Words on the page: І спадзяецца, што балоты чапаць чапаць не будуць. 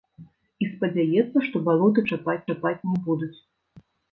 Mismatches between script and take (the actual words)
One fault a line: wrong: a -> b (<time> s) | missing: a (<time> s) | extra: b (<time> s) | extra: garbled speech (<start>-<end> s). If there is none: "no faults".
no faults